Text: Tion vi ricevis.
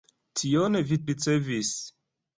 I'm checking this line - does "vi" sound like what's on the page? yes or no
yes